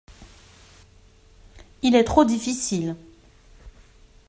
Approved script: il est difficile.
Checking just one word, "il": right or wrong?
right